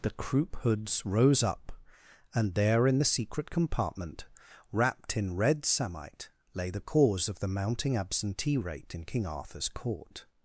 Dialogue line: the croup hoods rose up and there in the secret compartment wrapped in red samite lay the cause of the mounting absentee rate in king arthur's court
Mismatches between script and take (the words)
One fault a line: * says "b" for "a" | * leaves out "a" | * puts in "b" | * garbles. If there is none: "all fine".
all fine